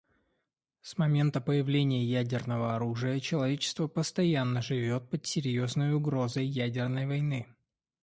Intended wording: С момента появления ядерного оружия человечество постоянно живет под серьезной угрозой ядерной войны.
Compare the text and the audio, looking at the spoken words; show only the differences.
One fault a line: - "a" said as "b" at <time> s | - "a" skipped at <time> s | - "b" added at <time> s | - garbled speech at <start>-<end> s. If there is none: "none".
none